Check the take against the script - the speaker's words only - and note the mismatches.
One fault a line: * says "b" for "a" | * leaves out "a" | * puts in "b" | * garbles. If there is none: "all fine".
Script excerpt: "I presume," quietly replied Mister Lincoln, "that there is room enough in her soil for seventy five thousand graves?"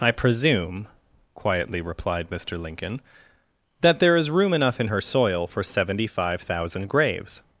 all fine